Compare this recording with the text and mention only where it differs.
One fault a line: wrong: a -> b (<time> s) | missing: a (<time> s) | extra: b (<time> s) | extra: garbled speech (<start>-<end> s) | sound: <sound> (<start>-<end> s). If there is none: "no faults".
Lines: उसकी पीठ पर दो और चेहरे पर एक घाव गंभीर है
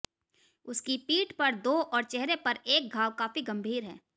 extra: काफी (3.2 s)